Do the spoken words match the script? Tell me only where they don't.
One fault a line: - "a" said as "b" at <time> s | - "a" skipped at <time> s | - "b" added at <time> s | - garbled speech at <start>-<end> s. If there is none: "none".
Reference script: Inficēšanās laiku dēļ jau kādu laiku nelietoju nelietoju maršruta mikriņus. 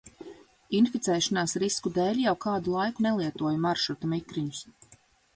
- "laiku" said as "risku" at 1.6 s
- "nelietoju" skipped at 3.6 s